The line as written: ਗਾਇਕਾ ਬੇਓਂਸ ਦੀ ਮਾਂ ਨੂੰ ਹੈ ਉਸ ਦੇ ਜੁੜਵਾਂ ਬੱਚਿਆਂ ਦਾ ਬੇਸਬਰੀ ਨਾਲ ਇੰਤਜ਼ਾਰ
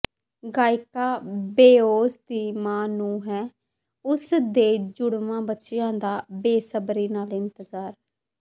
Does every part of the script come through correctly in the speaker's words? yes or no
yes